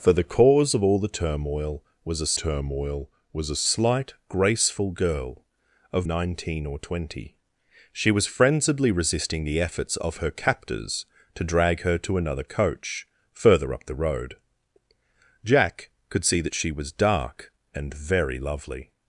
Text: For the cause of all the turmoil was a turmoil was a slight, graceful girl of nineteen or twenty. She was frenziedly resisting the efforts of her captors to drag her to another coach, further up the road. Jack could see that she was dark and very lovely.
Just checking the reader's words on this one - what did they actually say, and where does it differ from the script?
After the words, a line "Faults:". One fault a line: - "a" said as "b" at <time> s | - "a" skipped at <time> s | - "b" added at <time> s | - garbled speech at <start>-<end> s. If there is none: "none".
For the cause of all the turmoil was a turmoil was a slight, graceful girl of nineteen or twenty. She was frenziedly resisting the efforts of her captors to drag her to another coach, further up the road. Jack could see that she was dark and very lovely.
Faults:
none